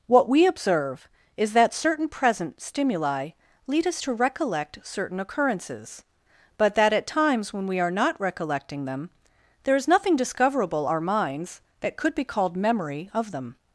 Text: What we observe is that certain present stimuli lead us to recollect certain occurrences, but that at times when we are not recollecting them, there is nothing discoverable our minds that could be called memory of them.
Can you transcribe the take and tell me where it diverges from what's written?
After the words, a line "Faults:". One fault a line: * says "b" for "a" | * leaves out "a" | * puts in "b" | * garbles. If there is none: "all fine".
What we observe is that certain present stimuli lead us to recollect certain occurrences, but that at times when we are not recollecting them, there is nothing discoverable our minds that could be called memory of them.
Faults:
all fine